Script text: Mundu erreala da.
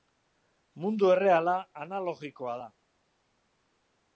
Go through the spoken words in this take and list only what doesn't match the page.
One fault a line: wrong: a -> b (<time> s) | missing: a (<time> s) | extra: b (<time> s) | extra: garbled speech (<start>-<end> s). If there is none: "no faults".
extra: analogikoa (1.8 s)